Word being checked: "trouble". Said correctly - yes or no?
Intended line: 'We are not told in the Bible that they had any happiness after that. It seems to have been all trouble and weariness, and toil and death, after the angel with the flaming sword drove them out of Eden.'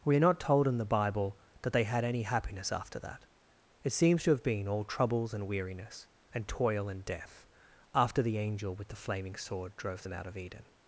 no